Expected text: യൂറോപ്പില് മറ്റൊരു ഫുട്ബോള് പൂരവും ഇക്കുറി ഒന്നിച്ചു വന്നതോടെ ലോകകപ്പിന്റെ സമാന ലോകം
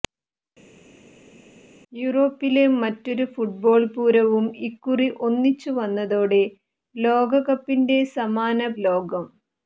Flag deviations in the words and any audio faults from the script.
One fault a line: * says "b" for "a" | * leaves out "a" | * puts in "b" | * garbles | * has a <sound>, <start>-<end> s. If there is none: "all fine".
all fine